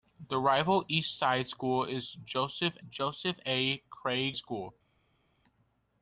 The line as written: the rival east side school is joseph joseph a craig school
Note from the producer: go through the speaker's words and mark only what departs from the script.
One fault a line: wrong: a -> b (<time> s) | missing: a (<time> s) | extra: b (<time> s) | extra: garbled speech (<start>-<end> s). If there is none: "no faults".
no faults